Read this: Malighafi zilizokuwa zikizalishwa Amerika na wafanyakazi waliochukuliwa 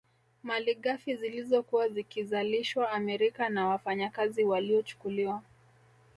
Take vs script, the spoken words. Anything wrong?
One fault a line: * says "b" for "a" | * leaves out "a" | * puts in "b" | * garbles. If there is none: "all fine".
all fine